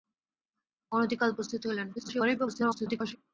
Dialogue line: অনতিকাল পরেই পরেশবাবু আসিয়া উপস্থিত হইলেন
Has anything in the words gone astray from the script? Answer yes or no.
yes